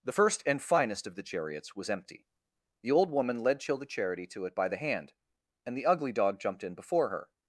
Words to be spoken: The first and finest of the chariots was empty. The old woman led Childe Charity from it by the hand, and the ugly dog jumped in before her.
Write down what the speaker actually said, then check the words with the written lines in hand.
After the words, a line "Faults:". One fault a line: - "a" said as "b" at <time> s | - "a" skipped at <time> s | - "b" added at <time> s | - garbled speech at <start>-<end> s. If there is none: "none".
The first and finest of the chariots was empty. The old woman led Childe Charity to it by the hand, and the ugly dog jumped in before her.
Faults:
- "from" said as "to" at 4.3 s